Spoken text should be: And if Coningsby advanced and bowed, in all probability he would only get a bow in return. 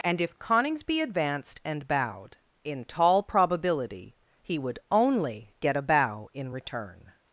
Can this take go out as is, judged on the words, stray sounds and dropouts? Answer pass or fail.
fail